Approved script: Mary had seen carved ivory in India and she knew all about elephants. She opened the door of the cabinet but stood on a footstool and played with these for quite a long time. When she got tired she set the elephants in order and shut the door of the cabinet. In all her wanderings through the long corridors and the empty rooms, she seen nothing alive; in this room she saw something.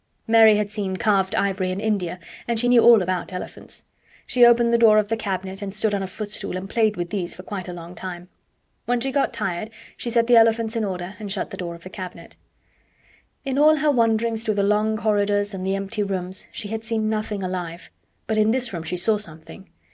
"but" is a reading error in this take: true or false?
true